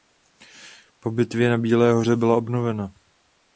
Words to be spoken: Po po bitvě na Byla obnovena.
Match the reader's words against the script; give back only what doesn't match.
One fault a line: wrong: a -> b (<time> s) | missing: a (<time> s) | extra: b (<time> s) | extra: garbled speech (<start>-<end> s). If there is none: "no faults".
missing: po (1.1 s)
extra: Bílé Hoře (1.6 s)